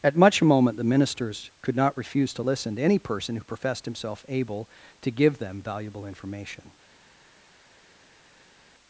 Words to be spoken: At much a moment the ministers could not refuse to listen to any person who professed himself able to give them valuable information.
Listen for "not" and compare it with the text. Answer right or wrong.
right